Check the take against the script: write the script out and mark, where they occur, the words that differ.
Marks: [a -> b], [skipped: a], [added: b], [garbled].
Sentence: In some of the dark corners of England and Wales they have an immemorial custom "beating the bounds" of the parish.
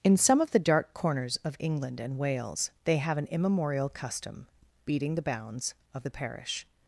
In some of the dark corners of England and Wales they have an immemorial custom "beating the bounds" of the parish.